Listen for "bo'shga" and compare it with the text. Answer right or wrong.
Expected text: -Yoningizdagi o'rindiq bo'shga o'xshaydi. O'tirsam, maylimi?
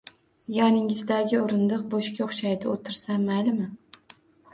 right